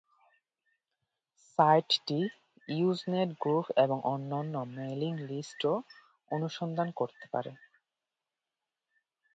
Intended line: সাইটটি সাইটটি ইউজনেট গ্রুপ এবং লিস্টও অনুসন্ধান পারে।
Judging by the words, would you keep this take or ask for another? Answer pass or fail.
fail